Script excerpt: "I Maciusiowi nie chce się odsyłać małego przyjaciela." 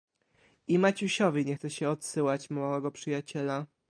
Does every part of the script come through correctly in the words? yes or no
yes